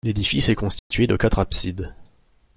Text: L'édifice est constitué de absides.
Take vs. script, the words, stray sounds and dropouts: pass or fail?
fail